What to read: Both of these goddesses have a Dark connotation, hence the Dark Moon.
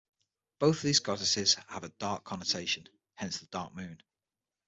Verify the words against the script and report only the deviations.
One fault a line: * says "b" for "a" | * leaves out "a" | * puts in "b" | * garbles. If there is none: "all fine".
all fine